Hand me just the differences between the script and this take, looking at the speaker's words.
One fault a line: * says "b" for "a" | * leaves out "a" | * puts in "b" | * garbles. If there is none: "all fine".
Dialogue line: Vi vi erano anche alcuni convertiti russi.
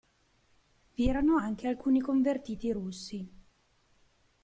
* leaves out "vi"